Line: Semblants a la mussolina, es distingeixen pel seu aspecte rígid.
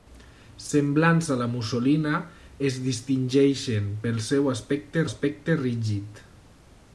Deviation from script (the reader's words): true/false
true